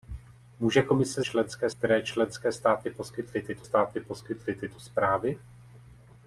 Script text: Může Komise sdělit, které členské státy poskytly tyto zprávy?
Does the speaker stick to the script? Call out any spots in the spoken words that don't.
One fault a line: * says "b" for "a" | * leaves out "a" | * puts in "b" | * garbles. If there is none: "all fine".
* says "členské" for "sdělit"
* puts in "státy poskytly tyto"